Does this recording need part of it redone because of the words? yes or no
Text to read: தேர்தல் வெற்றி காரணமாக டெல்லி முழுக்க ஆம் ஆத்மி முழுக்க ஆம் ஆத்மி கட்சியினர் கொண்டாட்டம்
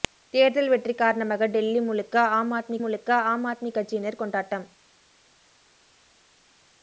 no